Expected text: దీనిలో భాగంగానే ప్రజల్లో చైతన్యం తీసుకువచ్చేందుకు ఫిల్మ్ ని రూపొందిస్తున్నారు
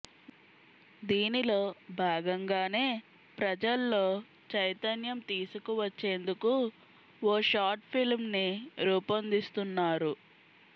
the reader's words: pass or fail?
fail